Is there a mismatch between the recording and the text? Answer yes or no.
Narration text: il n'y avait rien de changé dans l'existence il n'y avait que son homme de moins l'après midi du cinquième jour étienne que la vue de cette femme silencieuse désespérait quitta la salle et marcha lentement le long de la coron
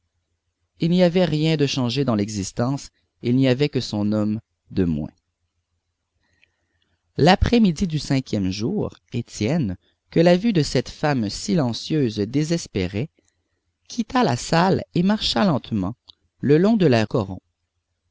no